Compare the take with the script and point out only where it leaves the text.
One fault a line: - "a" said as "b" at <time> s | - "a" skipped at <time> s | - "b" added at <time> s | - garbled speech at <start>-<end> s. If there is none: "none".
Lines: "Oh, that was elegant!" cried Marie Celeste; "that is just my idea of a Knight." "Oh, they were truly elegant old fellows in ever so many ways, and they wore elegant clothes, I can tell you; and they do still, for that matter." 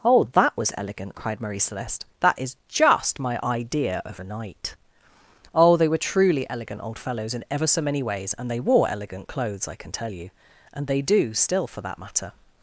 none